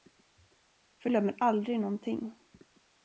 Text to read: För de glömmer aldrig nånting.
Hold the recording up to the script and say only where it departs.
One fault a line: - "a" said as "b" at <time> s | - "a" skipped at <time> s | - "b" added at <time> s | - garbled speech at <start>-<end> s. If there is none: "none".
- "de" skipped at 1.1 s